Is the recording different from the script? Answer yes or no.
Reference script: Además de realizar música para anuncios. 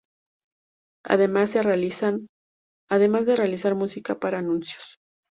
no